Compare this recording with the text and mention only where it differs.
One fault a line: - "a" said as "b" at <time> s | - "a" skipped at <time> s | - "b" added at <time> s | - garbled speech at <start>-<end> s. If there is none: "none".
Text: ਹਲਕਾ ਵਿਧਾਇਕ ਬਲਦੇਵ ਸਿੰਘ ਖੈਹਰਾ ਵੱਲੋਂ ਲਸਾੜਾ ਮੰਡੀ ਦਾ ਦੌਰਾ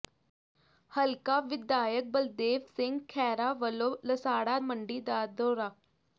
none